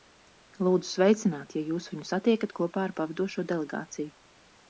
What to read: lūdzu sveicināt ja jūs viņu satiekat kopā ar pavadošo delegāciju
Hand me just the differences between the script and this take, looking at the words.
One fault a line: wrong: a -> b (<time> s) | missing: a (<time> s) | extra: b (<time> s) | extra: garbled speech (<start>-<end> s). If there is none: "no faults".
no faults